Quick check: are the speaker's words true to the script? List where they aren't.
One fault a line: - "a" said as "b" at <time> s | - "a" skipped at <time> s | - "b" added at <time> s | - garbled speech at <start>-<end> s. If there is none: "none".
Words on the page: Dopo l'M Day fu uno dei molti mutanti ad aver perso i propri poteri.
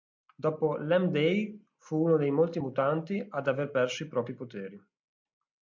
none